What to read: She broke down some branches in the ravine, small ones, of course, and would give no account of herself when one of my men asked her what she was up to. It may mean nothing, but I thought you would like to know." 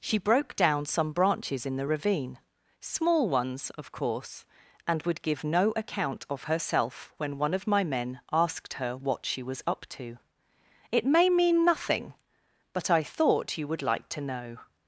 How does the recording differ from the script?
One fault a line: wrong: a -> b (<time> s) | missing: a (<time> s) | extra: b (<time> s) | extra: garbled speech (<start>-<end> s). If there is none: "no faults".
no faults